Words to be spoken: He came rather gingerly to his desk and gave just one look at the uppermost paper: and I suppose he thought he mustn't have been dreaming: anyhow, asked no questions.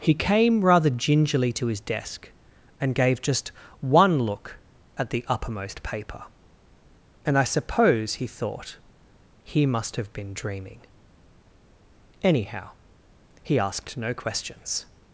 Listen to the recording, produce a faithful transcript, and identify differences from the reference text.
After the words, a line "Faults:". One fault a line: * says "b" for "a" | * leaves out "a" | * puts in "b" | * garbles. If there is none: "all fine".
He came rather gingerly to his desk and gave just one look at the uppermost paper: and I suppose he thought he must have been dreaming: anyhow, he asked no questions.
Faults:
* says "must" for "mustn't"
* puts in "he"